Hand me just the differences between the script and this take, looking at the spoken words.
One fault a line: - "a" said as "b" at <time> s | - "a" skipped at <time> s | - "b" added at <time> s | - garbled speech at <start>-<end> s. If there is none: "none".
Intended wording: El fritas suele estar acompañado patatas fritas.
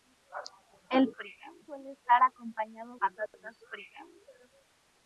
none